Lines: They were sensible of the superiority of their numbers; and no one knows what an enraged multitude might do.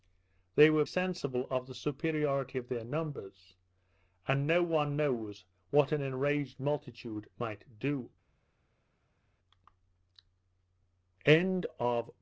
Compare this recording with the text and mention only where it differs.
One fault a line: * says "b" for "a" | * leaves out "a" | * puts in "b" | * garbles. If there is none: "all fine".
all fine